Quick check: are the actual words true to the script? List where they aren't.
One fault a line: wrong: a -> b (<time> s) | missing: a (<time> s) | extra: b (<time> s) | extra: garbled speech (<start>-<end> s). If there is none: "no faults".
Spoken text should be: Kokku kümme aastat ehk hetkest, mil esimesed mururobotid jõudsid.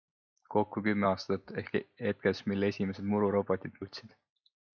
no faults